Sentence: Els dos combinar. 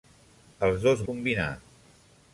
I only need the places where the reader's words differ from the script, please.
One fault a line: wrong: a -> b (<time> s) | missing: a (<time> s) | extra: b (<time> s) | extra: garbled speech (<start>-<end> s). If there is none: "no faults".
no faults